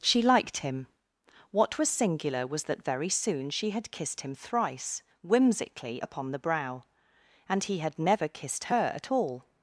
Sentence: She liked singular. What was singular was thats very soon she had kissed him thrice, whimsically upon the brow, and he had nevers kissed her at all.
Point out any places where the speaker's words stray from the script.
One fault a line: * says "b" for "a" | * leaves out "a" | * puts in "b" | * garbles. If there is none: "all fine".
* says "him" for "singular"
* says "that" for "thats"
* says "never" for "nevers"